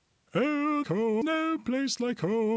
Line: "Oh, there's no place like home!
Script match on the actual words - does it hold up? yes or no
no